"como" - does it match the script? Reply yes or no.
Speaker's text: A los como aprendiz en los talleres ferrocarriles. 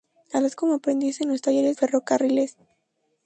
yes